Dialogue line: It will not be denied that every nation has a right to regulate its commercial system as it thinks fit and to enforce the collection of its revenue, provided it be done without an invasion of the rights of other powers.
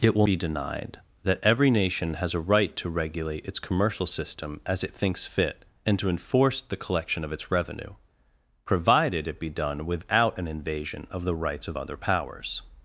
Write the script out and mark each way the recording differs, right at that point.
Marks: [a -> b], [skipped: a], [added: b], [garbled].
It will [skipped: not] be denied that every nation has a right to regulate its commercial system as it thinks fit and to enforce the collection of its revenue, provided it be done without an invasion of the rights of other powers.